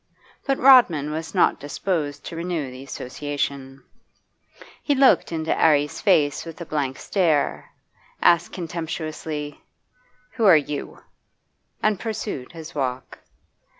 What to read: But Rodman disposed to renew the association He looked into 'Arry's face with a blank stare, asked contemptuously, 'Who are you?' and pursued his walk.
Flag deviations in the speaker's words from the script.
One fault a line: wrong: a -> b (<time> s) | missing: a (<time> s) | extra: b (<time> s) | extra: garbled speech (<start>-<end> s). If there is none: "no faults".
extra: was not (1.1 s)